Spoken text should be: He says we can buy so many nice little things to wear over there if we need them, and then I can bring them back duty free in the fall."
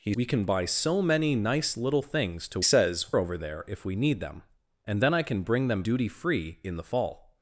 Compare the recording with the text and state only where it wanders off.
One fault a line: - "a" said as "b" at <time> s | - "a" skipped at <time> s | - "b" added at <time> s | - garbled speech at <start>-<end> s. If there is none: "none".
- "says" skipped at 0.1 s
- "wear" said as "says" at 2.6 s
- "back" skipped at 5.8 s